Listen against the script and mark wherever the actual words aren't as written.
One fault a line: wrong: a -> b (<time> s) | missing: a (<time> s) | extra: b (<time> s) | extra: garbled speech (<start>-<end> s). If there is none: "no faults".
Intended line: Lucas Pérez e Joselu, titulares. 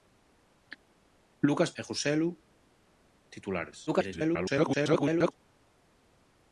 missing: Pérez (1.7 s)
extra: garbled speech (3.9-5.3 s)